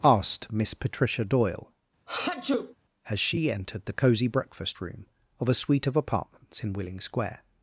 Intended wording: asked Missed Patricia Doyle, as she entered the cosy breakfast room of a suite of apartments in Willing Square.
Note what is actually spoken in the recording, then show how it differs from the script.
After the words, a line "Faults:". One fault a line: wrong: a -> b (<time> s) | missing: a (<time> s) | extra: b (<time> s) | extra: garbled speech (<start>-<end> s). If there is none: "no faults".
asked Miss Patricia Doyle, as she entered the cosy breakfast room of a suite of apartments in Willing Square.
Faults:
wrong: Missed -> Miss (0.5 s)